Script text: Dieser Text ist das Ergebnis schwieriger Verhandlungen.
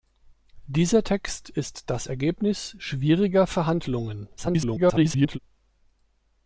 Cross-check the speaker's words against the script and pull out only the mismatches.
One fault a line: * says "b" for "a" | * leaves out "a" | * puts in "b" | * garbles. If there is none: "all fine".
* garbles